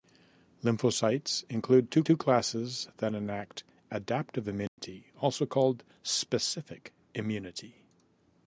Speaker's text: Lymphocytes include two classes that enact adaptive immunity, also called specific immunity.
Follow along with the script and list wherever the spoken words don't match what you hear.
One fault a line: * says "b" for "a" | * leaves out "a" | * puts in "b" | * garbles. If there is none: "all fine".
* puts in "two"